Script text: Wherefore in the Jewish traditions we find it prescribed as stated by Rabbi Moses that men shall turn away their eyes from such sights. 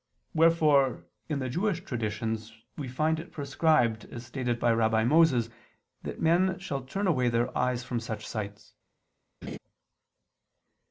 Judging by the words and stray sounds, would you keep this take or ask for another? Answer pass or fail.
fail